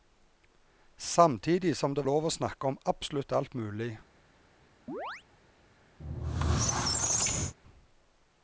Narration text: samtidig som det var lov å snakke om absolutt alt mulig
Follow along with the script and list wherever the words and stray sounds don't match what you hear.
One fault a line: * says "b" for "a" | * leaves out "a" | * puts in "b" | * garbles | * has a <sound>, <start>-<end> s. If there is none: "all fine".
* leaves out "var"
* has a chirp, 4.9-5.2 s
* has a squeak, 6.0-7.5 s